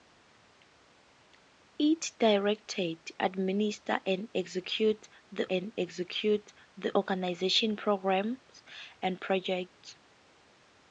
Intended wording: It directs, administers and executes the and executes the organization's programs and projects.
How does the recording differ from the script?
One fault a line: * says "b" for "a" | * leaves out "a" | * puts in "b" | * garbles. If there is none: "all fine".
all fine